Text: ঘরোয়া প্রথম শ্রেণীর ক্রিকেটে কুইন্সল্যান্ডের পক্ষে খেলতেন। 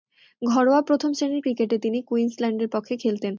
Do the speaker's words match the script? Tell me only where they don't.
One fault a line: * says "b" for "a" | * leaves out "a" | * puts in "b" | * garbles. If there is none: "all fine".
* puts in "তিনি"